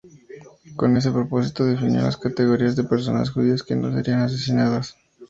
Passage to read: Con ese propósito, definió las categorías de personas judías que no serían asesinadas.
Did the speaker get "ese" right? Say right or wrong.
right